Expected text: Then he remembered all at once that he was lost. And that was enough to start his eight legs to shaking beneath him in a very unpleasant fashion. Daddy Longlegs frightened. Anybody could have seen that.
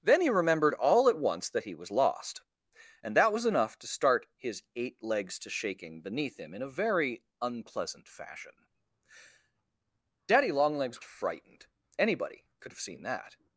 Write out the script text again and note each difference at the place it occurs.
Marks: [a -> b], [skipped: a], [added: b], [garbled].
Then he remembered all at once that he was lost. And that was enough to start his eight legs to shaking beneath him in a very unpleasant fashion. Daddy Longlegs frightened. Anybody could have seen that.